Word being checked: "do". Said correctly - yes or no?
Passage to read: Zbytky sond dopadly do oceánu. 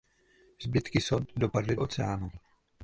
no